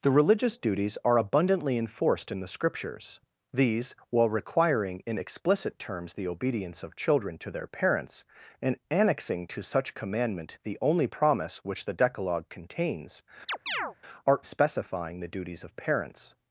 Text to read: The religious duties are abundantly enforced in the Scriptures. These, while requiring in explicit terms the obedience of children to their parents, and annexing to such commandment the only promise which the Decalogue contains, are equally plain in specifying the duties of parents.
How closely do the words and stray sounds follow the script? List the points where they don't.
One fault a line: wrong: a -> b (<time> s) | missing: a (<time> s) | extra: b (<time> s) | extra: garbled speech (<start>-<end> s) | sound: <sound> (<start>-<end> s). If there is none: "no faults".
sound: chirp (13.5-14.0 s)
missing: equally plain in (14.4 s)